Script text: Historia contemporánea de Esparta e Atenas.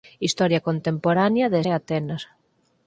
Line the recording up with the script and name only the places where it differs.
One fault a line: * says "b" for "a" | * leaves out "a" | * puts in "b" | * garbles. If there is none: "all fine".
* leaves out "Esparta"